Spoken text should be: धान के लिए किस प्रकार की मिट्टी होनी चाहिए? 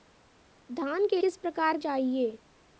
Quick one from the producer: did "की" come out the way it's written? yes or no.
no